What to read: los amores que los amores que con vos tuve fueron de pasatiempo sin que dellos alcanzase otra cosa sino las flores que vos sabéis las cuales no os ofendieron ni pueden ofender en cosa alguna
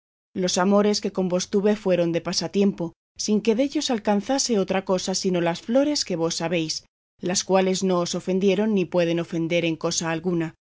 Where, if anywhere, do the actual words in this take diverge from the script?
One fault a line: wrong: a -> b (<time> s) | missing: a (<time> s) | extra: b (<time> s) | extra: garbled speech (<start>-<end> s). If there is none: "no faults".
missing: los amores que (1.1 s)